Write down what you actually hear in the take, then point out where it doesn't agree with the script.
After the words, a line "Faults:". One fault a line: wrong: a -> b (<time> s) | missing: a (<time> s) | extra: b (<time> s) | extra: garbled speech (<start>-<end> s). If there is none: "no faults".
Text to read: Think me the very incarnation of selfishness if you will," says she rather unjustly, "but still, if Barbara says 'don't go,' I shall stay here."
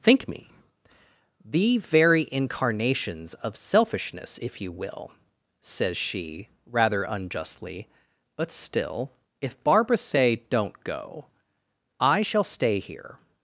Think me the very incarnations of selfishness if you will," says she rather unjustly, "but still, if Barbara say 'don't go,' I shall stay here."
Faults:
wrong: incarnation -> incarnations (2.3 s)
wrong: says -> say (10.0 s)